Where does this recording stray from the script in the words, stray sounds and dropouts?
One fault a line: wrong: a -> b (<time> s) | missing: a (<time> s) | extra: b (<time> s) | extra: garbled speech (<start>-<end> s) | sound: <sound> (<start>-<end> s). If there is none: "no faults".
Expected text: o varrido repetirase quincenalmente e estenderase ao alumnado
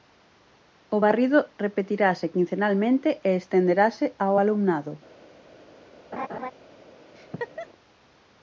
sound: laugh (6.1-6.5 s)
sound: laugh (7.2-7.7 s)